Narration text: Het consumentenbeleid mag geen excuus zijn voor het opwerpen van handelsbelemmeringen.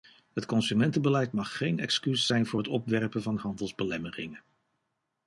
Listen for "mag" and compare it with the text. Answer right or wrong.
right